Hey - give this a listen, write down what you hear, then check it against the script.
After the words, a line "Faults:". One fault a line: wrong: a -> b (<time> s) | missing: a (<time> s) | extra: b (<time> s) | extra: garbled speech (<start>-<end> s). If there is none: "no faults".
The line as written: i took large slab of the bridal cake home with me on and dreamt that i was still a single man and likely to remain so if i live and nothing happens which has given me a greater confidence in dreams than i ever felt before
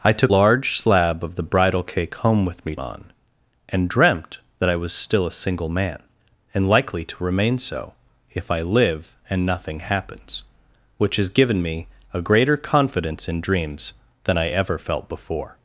i took large slab of the bridal cake home with me on and dreamt that i was still a single man and likely to remain so if i live and nothing happens which has given me a greater confidence in dreams than i ever felt before
Faults:
no faults